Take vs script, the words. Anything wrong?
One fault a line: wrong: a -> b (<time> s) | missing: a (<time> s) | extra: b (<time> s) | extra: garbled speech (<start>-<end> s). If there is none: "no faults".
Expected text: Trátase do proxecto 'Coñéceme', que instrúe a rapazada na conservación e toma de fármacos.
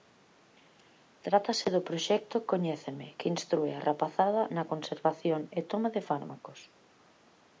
no faults